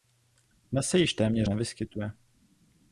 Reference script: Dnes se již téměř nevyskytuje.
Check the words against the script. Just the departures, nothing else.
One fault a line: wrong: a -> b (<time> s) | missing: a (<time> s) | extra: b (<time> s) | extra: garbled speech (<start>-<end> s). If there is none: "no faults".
no faults